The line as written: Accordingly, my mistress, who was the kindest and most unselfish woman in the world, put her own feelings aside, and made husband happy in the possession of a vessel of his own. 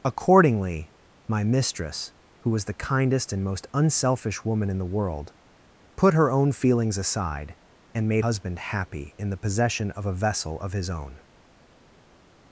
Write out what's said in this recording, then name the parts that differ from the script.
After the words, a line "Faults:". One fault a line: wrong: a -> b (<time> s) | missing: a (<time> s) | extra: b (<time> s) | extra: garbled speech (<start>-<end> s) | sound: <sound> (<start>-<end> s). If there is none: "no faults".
Accordingly, my mistress, who was the kindest and most unselfish woman in the world, put her own feelings aside, and made husband happy in the possession of a vessel of his own.
Faults:
no faults